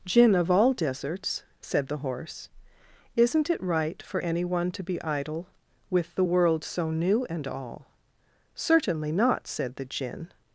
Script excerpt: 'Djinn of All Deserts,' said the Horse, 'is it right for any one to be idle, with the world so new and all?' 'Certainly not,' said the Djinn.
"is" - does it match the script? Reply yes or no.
no